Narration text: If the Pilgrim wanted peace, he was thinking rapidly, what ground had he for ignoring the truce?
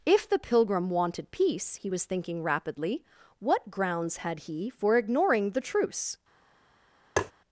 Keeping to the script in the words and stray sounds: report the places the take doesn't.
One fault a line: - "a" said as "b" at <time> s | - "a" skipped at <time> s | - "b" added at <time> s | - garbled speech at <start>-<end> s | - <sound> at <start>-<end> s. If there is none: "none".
- "ground" said as "grounds" at 3.7 s
- tap at 7.2-7.3 s